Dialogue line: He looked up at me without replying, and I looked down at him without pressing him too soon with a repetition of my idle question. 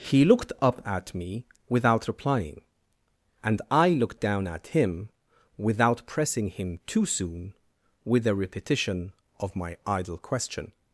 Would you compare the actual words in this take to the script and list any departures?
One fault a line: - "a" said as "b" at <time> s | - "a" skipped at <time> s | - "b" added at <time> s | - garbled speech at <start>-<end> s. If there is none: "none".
none